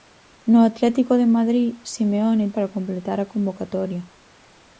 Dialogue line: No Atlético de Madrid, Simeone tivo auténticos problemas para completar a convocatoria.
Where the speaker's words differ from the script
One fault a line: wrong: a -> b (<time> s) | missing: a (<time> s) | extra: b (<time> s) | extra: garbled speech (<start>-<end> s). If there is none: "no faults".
missing: tivo auténticos problemas (2.5 s)